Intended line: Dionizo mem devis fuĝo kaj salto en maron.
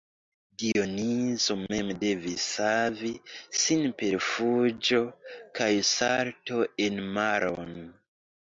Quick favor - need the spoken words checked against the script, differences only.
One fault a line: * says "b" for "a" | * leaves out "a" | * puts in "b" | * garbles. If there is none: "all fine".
* puts in "savi sin per"